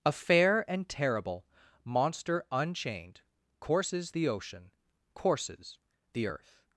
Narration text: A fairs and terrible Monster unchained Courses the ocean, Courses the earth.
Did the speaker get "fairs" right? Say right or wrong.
wrong